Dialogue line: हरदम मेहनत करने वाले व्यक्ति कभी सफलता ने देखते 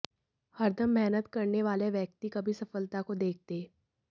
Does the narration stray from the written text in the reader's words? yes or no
yes